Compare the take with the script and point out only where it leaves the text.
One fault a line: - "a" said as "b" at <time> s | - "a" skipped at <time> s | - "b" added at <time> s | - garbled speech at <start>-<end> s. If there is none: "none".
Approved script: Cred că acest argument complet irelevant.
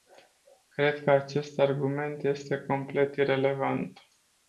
- "este" added at 2.2 s